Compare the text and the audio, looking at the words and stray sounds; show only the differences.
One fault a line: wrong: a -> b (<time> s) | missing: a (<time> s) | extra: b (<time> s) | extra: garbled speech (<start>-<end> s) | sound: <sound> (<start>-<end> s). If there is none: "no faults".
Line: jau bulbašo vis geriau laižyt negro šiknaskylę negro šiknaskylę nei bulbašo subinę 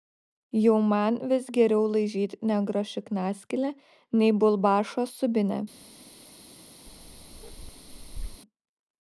wrong: bulbašo -> man (0.9 s)
missing: negro šiknaskylę (3.7 s)
sound: bark (6.9-8.4 s)